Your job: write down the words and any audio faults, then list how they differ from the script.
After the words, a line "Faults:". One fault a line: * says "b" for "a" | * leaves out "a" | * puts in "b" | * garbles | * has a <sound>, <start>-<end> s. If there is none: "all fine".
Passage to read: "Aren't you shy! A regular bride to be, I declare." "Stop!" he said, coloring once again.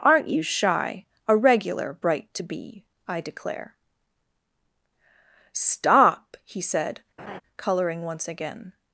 "Aren't you shy! A regular bright to be, I declare." "Stop!" he said, coloring once again.
Faults:
* says "bright" for "bride"
* has a laugh, 7.2-7.4 s